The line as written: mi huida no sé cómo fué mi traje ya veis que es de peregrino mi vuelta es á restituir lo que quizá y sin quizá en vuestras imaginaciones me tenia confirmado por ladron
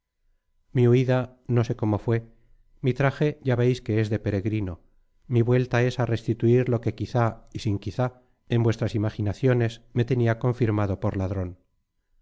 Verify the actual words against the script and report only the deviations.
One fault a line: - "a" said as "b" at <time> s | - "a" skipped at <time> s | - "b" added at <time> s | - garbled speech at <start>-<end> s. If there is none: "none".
none